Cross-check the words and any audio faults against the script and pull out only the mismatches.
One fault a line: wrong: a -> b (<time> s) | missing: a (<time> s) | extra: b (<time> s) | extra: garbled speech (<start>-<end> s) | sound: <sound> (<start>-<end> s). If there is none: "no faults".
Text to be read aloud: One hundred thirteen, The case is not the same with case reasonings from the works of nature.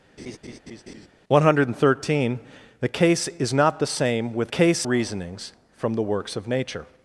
sound: laugh (0.2-1.1 s)